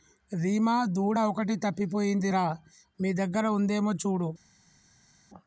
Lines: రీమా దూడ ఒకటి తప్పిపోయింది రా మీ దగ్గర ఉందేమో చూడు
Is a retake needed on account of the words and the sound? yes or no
no